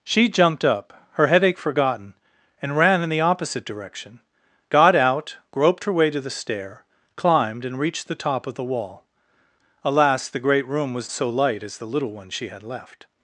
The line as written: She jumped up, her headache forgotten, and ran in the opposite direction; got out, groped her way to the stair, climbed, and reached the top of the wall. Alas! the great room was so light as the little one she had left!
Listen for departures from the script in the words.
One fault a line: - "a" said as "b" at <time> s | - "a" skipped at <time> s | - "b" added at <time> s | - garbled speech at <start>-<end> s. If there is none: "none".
none